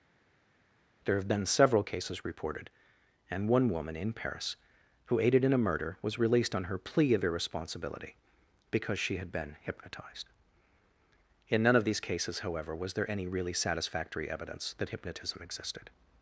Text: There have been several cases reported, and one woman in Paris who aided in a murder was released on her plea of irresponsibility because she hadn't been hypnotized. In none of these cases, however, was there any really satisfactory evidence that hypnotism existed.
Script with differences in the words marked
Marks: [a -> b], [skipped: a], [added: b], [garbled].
There have been several cases reported, and one woman in Paris who aided in a murder was released on her plea of irresponsibility because she [hadn't -> had] been hypnotized. In none of these cases, however, was there any really satisfactory evidence that hypnotism existed.